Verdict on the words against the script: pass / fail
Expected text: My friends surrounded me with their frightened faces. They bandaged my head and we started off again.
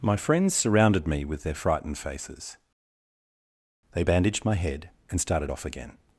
fail